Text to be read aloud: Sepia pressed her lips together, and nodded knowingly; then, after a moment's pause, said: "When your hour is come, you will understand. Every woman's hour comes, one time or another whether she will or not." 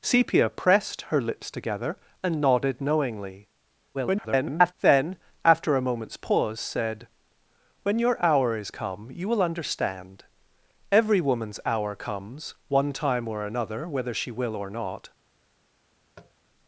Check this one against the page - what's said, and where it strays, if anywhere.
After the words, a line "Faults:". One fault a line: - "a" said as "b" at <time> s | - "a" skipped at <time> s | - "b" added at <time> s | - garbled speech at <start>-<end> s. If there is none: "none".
Sepia pressed her lips together, and nodded knowingly; [garbled] then, after a moment's pause, said: "When your hour is come, you will understand. Every woman's hour comes, one time or another whether she will or not."
Faults:
- garbled speech at 3.9-4.7 s